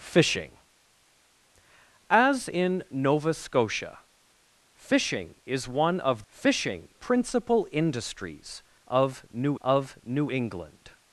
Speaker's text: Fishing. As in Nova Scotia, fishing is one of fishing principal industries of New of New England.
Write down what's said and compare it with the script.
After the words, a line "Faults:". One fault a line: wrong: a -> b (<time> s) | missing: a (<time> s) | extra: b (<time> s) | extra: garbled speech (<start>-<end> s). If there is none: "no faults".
Fishing. As in Nova Scotia, fishing is one of fishing principal industries of New of New England.
Faults:
no faults